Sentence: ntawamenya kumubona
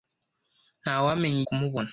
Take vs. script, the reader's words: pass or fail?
pass